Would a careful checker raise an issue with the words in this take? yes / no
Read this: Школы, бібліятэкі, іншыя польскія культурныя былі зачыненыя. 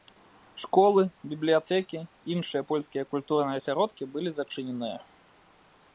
yes